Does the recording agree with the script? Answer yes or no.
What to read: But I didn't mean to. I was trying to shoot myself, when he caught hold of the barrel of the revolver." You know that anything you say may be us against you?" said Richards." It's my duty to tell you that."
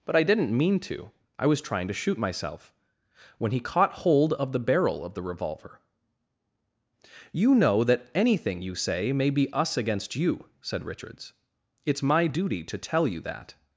yes